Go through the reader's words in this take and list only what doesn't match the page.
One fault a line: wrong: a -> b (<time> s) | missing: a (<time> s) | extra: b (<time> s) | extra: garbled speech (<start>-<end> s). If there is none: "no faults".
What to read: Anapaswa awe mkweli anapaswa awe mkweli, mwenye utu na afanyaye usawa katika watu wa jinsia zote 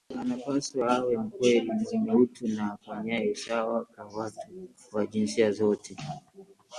missing: anapaswa awe mkweli (1.7 s)
wrong: katika -> kwa (3.8 s)